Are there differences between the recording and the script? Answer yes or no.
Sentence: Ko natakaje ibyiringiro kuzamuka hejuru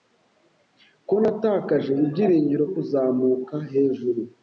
no